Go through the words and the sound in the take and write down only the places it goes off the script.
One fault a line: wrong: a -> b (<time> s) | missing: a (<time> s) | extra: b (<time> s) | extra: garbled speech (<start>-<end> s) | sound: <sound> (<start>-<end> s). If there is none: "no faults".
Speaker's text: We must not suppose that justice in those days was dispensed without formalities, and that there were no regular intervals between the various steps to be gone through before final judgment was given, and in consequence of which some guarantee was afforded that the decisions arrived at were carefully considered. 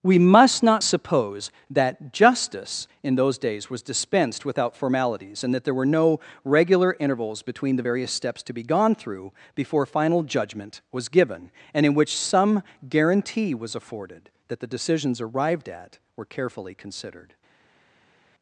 missing: consequence of (11.9 s)